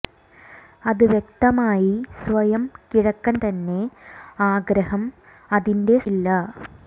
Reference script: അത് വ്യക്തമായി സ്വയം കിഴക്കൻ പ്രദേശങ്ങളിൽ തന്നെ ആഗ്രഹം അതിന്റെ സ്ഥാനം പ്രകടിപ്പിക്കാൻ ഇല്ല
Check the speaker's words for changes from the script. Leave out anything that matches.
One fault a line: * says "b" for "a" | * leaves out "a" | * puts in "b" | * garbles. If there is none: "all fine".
* leaves out "പ്രദേശങ്ങളിൽ"
* leaves out "സ്ഥാനം പ്രകടിപ്പിക്കാൻ"